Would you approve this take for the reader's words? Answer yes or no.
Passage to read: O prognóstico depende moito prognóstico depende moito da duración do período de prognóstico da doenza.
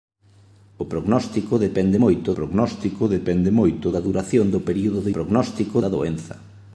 yes